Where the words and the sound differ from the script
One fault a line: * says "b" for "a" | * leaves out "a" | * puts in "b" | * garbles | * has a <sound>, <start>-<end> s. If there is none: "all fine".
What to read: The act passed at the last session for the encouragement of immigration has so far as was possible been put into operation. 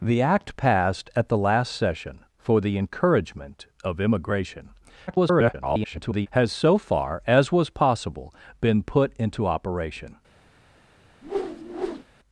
* garbles
* has a whoosh, 11.2-12.0 s